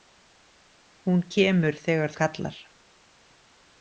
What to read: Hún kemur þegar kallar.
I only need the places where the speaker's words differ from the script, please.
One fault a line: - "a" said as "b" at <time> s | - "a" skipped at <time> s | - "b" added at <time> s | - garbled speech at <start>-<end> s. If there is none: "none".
none